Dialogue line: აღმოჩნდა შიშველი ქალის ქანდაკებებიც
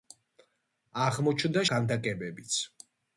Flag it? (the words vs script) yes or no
yes